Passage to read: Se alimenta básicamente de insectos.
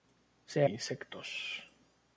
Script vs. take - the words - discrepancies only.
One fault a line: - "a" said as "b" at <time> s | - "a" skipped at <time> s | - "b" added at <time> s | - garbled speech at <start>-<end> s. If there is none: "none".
- "alimenta básicamente de" skipped at 0.7 s